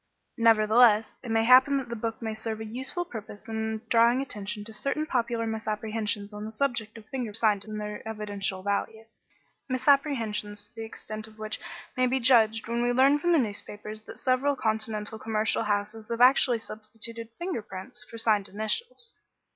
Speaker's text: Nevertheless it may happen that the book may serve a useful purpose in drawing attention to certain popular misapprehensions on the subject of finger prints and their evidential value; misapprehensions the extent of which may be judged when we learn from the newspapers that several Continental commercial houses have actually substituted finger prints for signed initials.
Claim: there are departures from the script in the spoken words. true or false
true